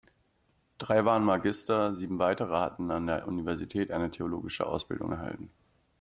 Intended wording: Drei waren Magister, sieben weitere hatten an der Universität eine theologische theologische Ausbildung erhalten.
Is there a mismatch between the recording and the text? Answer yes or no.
yes